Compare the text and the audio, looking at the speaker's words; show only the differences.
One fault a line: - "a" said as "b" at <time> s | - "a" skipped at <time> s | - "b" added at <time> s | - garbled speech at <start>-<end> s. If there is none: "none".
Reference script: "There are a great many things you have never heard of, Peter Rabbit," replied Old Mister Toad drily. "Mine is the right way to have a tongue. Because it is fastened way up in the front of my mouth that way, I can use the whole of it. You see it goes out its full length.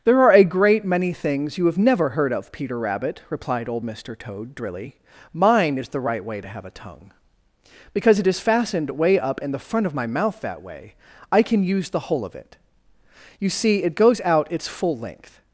none